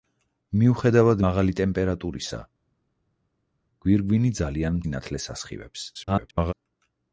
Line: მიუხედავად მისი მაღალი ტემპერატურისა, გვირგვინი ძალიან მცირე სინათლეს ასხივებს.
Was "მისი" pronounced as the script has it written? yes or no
no